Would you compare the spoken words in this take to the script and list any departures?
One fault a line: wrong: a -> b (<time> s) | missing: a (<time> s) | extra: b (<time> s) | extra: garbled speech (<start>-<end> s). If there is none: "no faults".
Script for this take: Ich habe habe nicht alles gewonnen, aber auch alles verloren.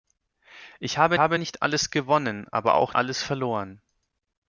no faults